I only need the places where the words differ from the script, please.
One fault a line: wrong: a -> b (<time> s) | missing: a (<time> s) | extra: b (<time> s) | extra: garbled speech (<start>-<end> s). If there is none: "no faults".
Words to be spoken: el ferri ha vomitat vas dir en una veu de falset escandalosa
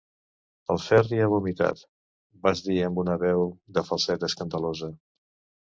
wrong: en -> amb (2.9 s)